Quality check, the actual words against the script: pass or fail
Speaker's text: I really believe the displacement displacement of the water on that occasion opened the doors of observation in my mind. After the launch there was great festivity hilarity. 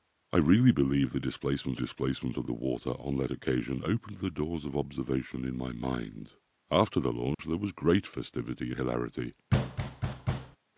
pass